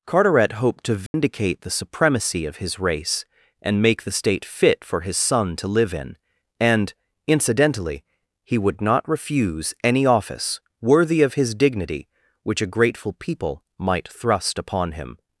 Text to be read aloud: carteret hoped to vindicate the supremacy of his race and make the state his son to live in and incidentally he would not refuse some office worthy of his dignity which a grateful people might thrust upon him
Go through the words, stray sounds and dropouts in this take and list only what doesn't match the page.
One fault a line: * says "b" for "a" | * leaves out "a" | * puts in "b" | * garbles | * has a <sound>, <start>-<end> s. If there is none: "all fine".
* has a dropout, 1.1-1.1 s
* puts in "fit for"
* says "any" for "some"